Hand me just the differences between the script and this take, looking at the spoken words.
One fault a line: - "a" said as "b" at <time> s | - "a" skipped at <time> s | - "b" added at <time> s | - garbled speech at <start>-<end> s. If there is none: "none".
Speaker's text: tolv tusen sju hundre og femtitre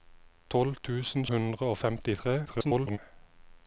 - "sju" skipped at 1.3 s
- garbled speech at 2.5-3.0 s